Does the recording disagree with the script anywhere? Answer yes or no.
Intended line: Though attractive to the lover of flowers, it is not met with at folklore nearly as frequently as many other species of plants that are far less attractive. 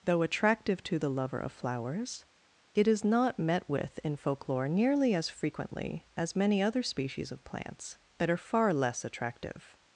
yes